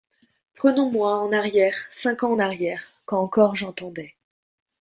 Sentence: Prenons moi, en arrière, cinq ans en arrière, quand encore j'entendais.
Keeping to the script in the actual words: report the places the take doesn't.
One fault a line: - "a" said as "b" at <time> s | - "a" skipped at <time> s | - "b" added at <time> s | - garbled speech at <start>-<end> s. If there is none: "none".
none